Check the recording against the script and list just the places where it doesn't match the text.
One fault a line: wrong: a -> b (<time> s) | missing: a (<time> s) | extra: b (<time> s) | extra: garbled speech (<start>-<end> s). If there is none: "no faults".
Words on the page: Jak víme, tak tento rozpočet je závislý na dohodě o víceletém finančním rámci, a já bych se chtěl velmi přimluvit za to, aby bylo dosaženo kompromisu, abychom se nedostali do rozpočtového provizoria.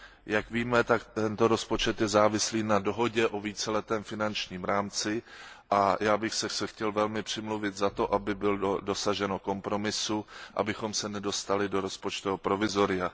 extra: se (6.5 s)